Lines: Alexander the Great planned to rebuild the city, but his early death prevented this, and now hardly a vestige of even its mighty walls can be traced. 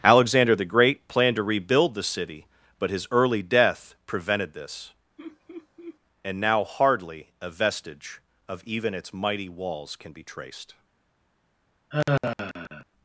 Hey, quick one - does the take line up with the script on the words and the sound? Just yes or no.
no